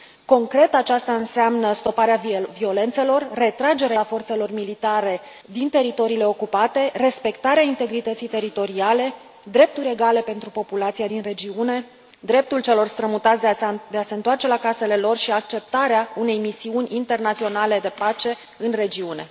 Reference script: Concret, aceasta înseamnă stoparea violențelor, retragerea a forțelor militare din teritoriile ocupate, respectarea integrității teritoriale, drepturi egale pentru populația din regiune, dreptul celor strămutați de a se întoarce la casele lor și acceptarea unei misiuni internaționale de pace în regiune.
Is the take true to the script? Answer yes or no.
yes